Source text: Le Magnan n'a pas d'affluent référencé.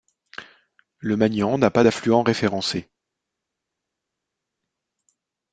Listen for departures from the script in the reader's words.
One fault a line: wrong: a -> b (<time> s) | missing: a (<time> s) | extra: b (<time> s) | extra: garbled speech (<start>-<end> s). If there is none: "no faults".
no faults